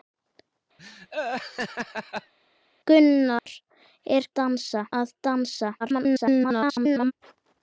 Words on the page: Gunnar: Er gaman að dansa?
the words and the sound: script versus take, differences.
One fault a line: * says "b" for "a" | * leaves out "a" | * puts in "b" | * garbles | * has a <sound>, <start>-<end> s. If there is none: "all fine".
* has a laugh, 0.8-2.3 s
* has a dropout, 3.4-3.5 s
* says "dansa" for "gaman"
* garbles